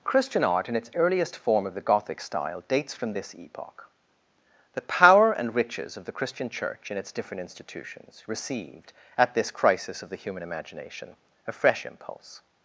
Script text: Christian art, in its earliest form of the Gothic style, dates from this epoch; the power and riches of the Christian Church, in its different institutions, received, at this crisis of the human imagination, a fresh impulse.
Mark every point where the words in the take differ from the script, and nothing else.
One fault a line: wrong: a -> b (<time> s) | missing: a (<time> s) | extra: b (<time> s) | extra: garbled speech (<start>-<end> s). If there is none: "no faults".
no faults